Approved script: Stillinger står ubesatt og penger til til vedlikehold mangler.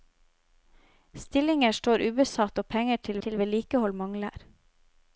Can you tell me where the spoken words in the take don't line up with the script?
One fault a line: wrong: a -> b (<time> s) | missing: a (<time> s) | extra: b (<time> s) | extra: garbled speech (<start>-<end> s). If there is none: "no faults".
no faults